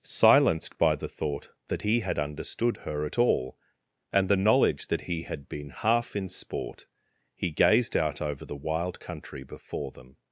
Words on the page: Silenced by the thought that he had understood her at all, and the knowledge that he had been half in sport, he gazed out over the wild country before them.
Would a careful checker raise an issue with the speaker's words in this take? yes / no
no